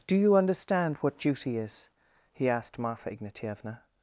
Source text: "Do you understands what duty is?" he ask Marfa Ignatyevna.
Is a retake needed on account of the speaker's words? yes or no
yes